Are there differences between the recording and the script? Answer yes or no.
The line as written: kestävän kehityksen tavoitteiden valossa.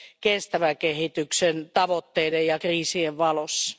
yes